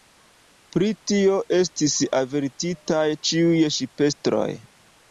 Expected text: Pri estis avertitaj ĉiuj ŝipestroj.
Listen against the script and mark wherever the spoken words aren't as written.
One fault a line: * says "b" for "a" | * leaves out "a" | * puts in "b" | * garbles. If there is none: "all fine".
* puts in "tio"